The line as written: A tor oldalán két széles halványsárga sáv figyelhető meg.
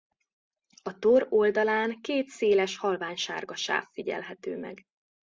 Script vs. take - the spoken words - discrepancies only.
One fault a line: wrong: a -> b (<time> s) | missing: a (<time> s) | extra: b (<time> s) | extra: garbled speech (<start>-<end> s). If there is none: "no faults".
no faults